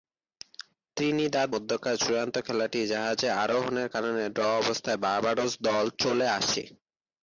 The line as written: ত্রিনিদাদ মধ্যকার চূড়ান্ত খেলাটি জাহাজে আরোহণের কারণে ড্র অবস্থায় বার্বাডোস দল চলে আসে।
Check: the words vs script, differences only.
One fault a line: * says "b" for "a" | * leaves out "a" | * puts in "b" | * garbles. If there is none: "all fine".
all fine